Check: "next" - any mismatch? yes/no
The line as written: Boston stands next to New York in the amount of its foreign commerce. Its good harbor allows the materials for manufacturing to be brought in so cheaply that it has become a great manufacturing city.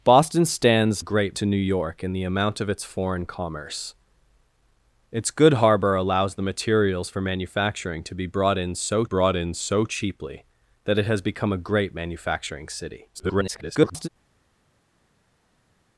yes